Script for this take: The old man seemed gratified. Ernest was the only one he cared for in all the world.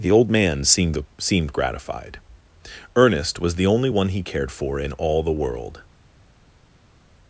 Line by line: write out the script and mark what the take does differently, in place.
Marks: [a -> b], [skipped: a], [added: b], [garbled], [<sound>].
The old man seemed [added: seemed] gratified. Ernest was the only one he cared for in all the world.